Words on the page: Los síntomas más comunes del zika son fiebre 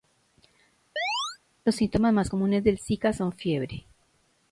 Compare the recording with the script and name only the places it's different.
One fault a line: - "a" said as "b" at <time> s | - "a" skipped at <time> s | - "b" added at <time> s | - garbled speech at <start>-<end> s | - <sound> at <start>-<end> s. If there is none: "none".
- chirp at 1.0-1.4 s